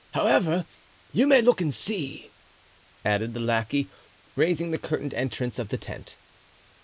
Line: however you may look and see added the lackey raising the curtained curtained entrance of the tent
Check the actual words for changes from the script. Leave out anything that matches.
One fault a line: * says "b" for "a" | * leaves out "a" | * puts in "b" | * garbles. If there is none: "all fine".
* leaves out "curtained"